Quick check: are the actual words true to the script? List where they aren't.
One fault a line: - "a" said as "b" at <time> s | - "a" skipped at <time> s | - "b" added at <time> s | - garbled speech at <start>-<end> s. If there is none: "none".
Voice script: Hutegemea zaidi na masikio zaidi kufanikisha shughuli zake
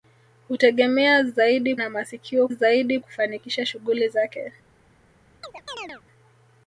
none